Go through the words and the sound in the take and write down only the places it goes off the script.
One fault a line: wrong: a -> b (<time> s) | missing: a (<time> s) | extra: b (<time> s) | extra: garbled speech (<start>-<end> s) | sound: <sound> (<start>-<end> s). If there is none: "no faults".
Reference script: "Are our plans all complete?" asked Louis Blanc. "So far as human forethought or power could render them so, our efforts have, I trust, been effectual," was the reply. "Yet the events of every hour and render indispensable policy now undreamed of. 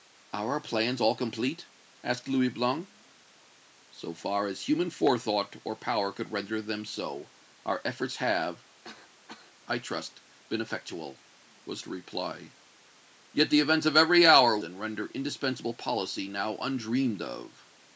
sound: cough (8.8-9.6 s)